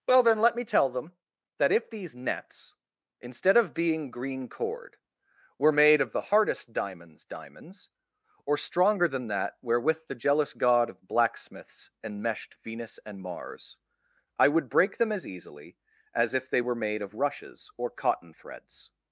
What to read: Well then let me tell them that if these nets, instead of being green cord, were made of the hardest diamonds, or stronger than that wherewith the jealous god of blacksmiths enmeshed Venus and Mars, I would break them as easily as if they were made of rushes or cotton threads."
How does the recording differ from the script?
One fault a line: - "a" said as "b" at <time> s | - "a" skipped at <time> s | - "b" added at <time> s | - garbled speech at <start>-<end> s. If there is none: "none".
- "diamonds" added at 7.2 s